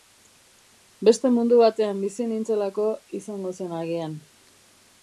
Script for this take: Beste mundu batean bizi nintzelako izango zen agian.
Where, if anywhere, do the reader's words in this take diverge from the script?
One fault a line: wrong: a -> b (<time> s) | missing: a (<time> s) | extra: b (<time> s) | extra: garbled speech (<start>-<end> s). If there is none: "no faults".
no faults